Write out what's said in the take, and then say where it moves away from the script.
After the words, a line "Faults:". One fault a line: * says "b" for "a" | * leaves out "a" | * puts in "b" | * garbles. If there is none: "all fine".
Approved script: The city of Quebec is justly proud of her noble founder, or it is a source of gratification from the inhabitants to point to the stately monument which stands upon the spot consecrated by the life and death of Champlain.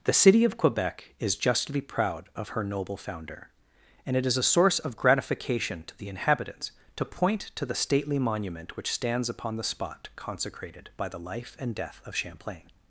The city of Quebec is justly proud of her noble founder, and it is a source of gratification to the inhabitants to point to the stately monument which stands upon the spot consecrated by the life and death of Champlain.
Faults:
* says "and" for "or"
* says "to" for "from"